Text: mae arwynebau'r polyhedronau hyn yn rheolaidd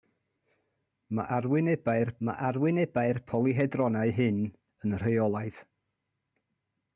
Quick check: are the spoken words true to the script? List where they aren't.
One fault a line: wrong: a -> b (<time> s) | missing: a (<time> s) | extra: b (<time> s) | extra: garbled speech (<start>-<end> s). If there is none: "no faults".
extra: mae arwynebau'r (2.3 s)